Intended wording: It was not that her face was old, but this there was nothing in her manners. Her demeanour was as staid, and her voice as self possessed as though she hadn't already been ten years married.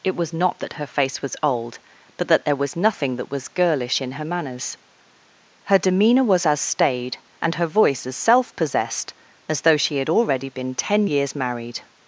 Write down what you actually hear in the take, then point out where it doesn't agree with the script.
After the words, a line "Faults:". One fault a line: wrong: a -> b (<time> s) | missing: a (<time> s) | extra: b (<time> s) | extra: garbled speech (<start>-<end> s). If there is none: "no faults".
It was not that her face was old, but that there was nothing that was girlish in her manners. Her demeanour was as staid, and her voice as self possessed as though she had already been ten years married.
Faults:
wrong: this -> that (2.3 s)
extra: that was girlish (3.2 s)
wrong: hadn't -> had (10.0 s)